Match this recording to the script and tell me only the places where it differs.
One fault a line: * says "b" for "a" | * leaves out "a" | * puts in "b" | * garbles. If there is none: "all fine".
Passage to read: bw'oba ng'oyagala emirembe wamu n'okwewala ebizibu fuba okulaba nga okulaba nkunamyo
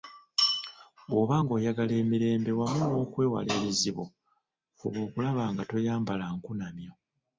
* says "toyambala" for "okulaba"